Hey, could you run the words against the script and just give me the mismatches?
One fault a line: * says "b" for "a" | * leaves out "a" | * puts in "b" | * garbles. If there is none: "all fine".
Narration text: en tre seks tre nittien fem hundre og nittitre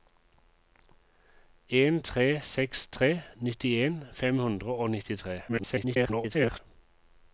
* garbles